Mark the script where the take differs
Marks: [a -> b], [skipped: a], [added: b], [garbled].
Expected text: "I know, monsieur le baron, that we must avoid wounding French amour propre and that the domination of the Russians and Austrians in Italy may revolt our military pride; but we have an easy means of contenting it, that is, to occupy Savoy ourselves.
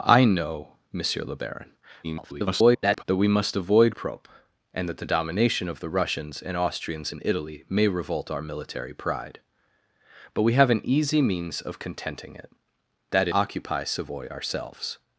"I know, monsieur le baron, [garbled] that we must avoid [skipped: wounding French amour] propre and that the domination of the Russians and Austrians in Italy may revolt our military pride; but we have an easy means of contenting it, that [skipped: is, to] occupy Savoy ourselves.